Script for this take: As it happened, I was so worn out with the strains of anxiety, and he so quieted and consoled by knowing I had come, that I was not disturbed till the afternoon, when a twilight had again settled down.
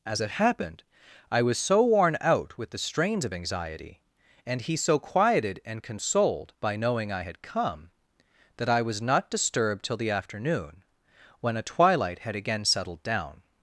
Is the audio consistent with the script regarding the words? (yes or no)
yes